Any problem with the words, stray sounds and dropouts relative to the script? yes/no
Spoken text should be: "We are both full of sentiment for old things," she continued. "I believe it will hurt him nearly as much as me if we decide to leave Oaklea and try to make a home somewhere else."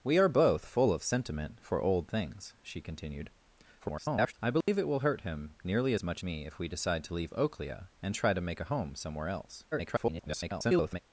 yes